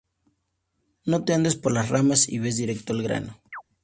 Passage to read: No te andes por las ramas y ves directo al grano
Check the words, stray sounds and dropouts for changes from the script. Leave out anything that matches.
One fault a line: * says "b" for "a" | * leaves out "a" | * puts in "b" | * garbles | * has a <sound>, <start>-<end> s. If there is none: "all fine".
* has a chirp, 3.5-3.6 s